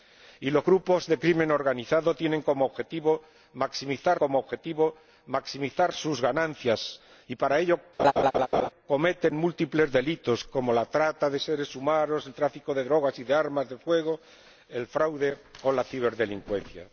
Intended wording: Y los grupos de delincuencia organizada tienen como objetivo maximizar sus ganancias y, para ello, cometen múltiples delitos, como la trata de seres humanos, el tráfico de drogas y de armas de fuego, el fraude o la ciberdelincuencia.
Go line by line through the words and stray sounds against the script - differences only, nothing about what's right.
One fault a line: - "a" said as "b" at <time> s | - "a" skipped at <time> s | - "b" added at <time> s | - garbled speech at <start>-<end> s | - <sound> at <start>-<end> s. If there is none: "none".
- "como objetivo maximizar" added at 4.1 s
- laugh at 8.0-8.7 s